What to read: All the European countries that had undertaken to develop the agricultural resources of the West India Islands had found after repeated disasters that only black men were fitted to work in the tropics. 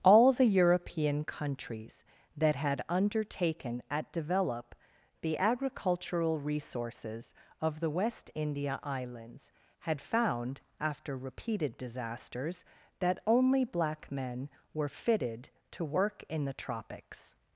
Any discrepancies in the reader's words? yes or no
yes